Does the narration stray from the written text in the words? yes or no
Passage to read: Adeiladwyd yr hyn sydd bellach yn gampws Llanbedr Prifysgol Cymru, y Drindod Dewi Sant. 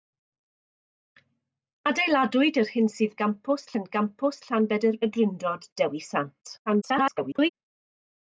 yes